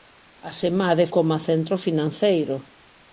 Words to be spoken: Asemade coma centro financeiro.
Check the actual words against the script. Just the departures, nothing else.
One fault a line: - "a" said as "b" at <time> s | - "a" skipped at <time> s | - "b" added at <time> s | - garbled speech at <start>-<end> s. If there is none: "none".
none